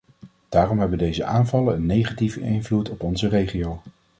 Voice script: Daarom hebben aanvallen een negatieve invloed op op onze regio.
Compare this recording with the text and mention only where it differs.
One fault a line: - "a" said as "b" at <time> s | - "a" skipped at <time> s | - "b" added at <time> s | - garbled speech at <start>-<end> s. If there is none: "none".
- "deze" added at 1.0 s
- "op" skipped at 3.0 s